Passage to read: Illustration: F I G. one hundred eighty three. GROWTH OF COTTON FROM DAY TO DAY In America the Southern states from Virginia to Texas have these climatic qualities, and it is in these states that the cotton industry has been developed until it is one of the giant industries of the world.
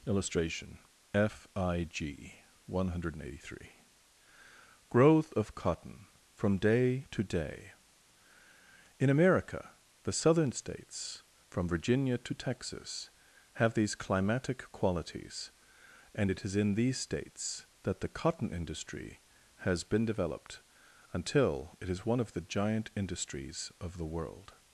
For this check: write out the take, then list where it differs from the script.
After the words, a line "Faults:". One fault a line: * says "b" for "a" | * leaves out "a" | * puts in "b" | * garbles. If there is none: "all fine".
Illustration: F I G. one hundred eighty three. GROWTH OF COTTON FROM DAY TO DAY In America the Southern states from Virginia to Texas have these climatic qualities, and it is in these states that the cotton industry has been developed until it is one of the giant industries of the world.
Faults:
all fine